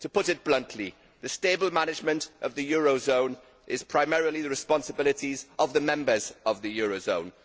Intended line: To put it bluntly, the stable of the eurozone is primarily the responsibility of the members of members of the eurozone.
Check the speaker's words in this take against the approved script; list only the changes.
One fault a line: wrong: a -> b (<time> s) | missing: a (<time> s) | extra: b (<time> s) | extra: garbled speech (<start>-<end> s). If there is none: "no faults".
extra: management (1.7 s)
missing: members of (6.6 s)